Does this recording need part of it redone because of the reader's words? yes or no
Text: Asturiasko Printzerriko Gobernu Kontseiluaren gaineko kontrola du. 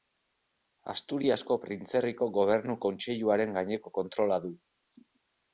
no